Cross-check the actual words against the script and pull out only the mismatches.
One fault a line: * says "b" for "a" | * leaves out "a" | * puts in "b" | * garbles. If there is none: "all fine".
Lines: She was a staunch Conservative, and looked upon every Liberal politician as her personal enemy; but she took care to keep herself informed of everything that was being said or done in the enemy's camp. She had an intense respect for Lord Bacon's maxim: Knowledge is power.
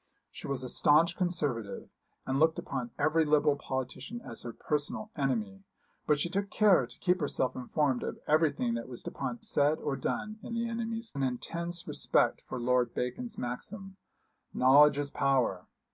* says "upon" for "being"
* leaves out "camp She had"